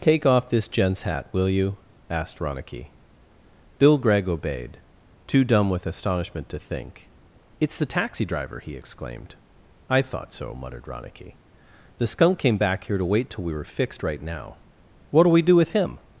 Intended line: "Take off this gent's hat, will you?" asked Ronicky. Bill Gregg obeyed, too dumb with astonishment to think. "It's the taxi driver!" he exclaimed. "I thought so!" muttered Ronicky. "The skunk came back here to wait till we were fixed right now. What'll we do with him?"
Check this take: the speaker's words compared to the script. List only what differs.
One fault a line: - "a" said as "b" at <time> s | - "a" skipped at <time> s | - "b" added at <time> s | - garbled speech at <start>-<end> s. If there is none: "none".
none